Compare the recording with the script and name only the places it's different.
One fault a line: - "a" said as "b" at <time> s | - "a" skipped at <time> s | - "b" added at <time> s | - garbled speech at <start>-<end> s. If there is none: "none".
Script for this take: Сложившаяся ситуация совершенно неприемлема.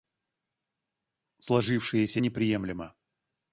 - "ситуация совершенно" skipped at 2.2 s